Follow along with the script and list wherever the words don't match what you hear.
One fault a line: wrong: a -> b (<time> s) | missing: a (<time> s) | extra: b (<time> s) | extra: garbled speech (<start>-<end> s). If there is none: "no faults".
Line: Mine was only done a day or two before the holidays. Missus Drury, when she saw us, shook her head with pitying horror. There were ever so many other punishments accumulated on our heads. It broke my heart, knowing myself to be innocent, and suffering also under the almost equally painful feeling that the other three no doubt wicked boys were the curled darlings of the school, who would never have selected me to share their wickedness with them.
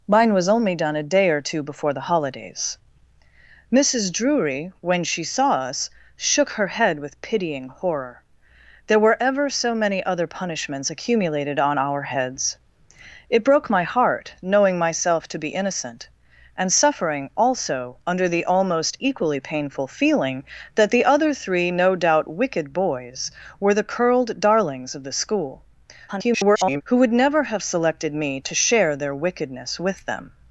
extra: garbled speech (26.1-26.8 s)